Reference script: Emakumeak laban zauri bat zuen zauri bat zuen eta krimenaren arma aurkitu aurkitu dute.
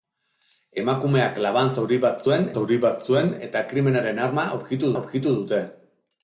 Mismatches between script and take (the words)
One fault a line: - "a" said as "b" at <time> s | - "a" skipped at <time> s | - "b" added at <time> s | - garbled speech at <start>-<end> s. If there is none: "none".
none